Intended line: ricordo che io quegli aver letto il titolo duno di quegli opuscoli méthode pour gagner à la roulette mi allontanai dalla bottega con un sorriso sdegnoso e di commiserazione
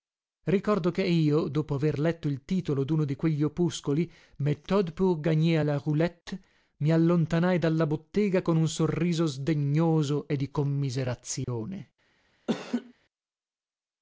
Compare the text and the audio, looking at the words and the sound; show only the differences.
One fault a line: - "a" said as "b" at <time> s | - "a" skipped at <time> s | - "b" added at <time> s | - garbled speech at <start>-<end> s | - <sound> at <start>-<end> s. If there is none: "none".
- "quegli" said as "dopo" at 1.5 s
- dropout at 11.4-11.5 s
- laugh at 12.5-12.9 s